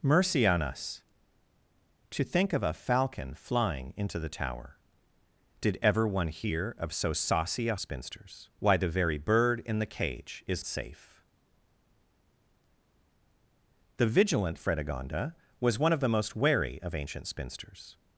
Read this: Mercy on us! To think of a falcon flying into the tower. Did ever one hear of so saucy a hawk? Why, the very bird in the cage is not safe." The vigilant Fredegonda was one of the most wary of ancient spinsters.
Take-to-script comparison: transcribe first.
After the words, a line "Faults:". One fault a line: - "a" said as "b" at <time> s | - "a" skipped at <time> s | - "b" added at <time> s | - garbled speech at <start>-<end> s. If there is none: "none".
Mercy on us! To think of a falcon flying into the tower. Did ever one hear of so saucy a spinsters? Why, the very bird in the cage is safe." The vigilant Fredegonda was one of the most wary of ancient spinsters.
Faults:
- "hawk" said as "spinsters" at 7.8 s
- "not" skipped at 10.6 s